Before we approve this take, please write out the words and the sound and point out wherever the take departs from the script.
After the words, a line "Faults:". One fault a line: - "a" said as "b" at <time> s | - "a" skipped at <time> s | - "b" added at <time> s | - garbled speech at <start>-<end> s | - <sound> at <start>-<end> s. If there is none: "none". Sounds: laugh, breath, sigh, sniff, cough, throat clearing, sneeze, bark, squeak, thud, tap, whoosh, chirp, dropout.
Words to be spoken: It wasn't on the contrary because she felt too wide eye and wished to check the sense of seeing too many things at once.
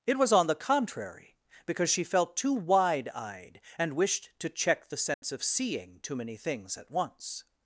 It was on the contrary because she felt too wide eyed and wished to check the sense of seeing too many things at once.
Faults:
- "wasn't" said as "was" at 0.2 s
- "eye" said as "eyed" at 3.1 s
- dropout at 5.1-5.2 s